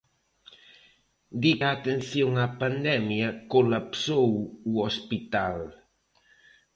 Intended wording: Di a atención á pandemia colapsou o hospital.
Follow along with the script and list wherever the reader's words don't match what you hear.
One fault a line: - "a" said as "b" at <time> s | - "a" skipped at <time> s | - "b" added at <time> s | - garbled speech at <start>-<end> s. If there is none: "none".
none